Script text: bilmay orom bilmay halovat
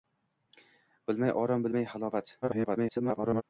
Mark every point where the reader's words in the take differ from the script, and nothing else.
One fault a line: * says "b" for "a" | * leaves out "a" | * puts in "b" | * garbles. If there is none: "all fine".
* garbles